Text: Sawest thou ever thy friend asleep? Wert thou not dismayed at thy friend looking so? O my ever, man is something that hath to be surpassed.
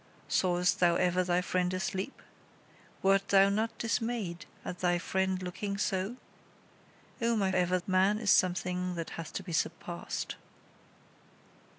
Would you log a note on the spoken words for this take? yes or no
no